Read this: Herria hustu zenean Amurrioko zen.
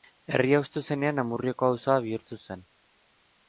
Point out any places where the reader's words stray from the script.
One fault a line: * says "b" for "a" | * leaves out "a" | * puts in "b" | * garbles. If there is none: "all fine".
* puts in "auzoa bihurtu"